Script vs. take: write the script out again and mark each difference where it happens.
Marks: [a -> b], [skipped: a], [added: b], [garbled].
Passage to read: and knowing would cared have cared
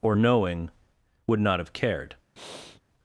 [and -> or] knowing would [cared -> not] have cared